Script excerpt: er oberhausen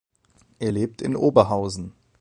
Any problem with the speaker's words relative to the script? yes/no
yes